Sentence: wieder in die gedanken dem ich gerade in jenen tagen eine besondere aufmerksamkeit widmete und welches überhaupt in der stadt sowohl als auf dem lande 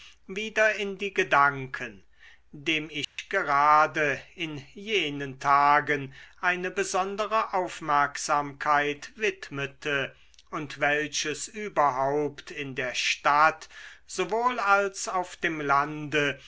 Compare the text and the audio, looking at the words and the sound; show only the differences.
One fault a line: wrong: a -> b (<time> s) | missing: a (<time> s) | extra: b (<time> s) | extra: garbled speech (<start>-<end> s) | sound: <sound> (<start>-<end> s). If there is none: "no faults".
sound: dropout (3.0-3.2 s)